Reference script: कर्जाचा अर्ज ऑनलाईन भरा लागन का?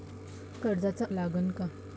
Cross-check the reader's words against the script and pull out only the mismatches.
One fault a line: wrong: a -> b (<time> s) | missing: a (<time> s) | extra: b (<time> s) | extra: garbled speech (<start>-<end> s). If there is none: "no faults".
missing: अर्ज ऑनलाईन भरा (1.1 s)